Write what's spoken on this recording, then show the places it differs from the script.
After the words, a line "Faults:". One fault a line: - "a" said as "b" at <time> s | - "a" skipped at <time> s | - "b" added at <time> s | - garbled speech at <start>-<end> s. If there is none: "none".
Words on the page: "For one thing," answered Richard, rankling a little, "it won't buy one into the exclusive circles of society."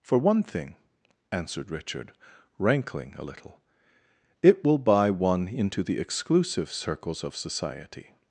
"For one thing," answered Richard, rankling a little, "it will buy one into the exclusive circles of society."
Faults:
- "won't" said as "will" at 4.6 s